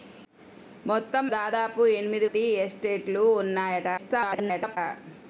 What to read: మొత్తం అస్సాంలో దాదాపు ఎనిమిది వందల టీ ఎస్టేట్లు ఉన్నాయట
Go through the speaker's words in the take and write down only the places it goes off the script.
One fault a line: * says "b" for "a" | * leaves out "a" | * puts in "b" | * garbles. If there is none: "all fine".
* leaves out "అస్సాంలో"
* leaves out "వందల"
* garbles